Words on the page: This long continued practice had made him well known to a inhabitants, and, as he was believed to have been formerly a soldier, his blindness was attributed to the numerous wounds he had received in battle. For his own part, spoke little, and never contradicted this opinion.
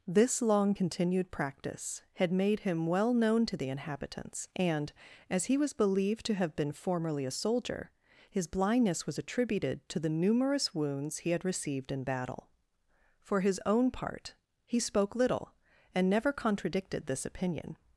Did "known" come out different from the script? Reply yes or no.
no